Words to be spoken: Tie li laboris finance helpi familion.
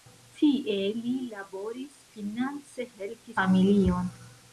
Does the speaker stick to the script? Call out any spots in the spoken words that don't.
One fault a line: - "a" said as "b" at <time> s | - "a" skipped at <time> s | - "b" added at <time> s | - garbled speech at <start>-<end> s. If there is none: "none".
none